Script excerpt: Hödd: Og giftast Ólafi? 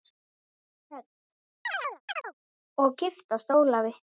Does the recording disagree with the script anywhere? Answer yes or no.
no